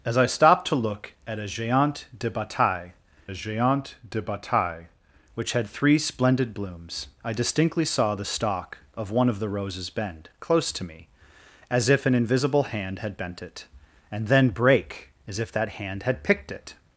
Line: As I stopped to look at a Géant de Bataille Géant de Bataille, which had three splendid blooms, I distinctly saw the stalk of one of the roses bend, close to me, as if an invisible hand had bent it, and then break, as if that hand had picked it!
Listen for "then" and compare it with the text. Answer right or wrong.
right